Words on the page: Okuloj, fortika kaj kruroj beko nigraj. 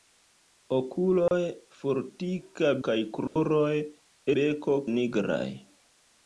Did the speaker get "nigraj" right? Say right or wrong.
right